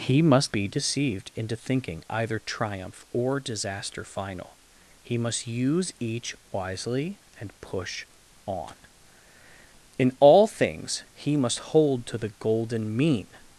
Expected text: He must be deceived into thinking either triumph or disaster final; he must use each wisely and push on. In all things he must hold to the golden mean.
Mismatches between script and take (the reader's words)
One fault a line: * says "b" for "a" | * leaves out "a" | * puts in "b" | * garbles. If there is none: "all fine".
all fine